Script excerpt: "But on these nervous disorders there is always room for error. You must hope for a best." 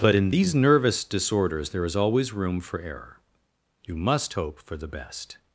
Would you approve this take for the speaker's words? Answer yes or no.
no